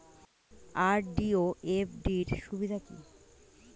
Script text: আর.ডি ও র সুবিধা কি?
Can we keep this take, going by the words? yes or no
no